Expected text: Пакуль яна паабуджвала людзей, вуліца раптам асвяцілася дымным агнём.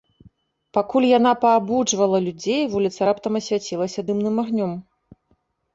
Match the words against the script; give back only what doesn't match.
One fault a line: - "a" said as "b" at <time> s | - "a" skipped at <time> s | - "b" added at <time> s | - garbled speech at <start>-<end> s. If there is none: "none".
none